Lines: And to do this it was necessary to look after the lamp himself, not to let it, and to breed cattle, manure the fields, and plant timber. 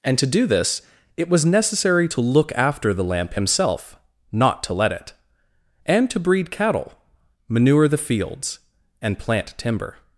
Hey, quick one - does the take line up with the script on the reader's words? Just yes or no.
yes